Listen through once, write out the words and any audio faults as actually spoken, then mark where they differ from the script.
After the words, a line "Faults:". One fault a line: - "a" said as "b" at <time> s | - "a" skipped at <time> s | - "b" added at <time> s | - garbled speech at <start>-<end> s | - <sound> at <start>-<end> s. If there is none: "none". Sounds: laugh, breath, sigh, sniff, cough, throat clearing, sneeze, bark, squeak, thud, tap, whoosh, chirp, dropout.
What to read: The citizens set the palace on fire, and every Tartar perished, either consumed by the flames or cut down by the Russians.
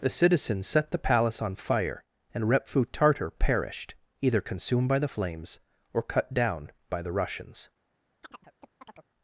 The citizens set the palace on fire, and repfu Tartar perished, either consumed by the flames or cut down by the Russians.
Faults:
- "every" said as "repfu" at 2.5 s
- chirp at 8.2-9.1 s